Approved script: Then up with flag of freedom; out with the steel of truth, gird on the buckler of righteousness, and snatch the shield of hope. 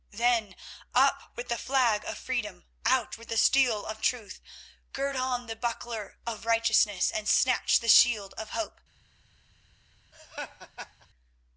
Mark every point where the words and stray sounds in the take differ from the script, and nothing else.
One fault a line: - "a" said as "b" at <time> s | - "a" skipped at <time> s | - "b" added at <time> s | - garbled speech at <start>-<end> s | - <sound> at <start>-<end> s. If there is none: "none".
- "the" added at 1.5 s
- laugh at 10.1-11.1 s